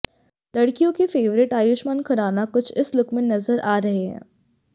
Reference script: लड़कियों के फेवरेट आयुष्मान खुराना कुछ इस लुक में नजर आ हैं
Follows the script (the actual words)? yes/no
no